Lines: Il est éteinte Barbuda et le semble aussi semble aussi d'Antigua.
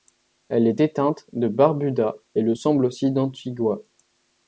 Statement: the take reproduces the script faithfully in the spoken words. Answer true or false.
false